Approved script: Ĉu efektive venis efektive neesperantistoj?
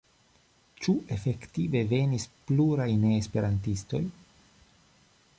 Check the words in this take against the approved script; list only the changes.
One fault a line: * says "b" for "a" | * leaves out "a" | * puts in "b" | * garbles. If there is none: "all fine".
* says "pluraj" for "efektive"